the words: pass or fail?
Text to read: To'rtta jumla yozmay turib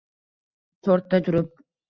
fail